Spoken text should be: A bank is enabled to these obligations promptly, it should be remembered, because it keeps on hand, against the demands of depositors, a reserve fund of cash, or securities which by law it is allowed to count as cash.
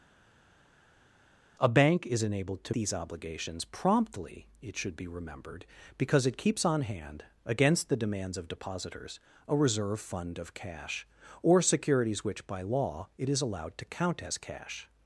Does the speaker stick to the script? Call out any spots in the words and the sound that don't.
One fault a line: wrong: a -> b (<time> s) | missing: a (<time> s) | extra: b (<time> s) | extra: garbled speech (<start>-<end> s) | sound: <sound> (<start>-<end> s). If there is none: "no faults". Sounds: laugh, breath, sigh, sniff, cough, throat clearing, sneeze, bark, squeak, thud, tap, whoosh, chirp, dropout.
no faults